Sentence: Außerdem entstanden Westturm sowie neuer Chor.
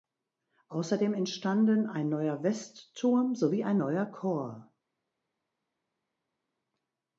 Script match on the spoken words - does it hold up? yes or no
no